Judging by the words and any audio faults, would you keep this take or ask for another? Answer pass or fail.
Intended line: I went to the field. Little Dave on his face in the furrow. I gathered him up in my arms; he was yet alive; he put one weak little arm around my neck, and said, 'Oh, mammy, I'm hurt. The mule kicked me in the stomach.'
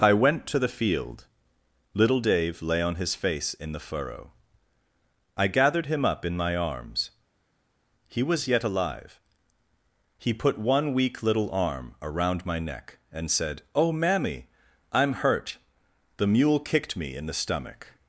fail